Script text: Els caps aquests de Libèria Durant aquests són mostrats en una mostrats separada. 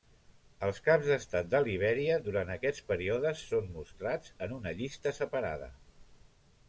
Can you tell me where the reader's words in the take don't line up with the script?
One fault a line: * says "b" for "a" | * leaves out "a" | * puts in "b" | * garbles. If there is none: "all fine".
* says "d'estat" for "aquests"
* puts in "períodes"
* says "llista" for "mostrats"